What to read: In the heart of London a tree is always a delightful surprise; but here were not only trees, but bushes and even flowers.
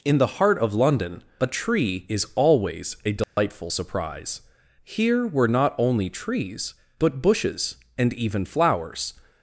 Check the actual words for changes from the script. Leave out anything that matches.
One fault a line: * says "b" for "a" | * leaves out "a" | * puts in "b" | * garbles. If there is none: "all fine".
* leaves out "but"